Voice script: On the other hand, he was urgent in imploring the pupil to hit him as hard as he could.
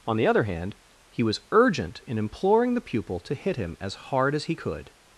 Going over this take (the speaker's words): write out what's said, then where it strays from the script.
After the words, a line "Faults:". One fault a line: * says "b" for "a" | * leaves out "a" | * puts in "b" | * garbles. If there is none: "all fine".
On the other hand, he was urgent in imploring the pupil to hit him as hard as he could.
Faults:
all fine